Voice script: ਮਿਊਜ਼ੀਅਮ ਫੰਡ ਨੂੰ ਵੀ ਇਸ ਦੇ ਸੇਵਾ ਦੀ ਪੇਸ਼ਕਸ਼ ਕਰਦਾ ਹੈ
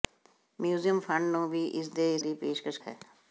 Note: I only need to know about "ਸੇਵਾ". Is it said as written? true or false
false